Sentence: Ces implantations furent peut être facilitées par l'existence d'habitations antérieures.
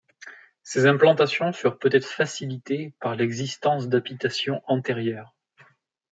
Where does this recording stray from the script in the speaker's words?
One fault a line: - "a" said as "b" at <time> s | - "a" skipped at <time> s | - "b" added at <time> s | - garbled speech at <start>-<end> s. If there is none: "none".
none